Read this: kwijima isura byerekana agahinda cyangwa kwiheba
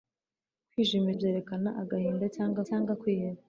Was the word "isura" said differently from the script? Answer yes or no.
yes